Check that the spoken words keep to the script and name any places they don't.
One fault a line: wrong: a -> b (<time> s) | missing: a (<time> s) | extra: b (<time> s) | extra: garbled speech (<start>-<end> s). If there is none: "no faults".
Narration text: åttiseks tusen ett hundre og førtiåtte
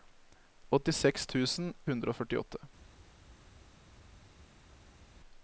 missing: ett (1.7 s)